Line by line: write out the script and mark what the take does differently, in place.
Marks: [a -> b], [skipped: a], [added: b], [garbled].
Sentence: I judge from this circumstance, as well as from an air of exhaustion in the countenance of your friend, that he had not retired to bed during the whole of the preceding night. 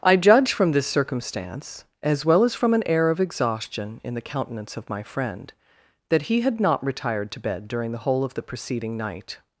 I judge from this circumstance, as well as from an air of exhaustion in the countenance of [your -> my] friend, that he had not retired to bed during the whole of the preceding night.